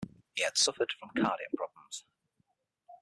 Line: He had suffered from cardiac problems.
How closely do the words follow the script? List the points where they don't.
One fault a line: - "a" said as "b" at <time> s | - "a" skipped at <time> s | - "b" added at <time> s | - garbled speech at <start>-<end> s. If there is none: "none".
none